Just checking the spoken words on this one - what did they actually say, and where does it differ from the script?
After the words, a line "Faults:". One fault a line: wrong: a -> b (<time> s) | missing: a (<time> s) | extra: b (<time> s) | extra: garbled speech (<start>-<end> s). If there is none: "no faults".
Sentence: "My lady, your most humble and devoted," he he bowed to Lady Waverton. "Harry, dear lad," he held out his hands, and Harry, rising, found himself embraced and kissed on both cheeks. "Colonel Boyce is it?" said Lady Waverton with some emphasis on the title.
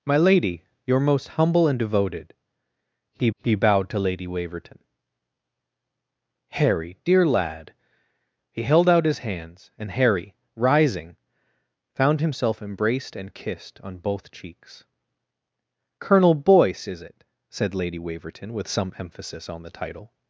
"My lady, your most humble and devoted," he he bowed to Lady Waverton. "Harry, dear lad," he held out his hands, and Harry, rising, found himself embraced and kissed on both cheeks. "Colonel Boyce is it?" said Lady Waverton with some emphasis on the title.
Faults:
no faults